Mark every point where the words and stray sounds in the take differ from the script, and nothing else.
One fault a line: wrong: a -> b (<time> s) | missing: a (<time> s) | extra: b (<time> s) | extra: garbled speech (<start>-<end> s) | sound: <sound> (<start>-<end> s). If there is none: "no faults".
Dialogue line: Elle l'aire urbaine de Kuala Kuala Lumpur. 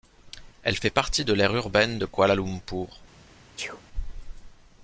extra: fait partie de (0.8 s)
missing: Kuala (2.3 s)
sound: sneeze (3.6-3.8 s)